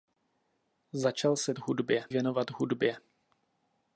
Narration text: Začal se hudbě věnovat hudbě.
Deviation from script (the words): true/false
false